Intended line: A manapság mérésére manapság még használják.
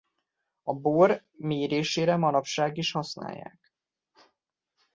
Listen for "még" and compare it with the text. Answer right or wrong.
wrong